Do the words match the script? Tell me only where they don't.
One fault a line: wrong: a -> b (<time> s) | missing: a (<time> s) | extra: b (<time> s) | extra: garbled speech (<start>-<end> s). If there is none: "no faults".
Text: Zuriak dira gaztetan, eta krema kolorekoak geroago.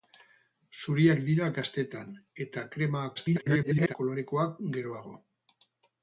extra: garbled speech (3.1-4.0 s)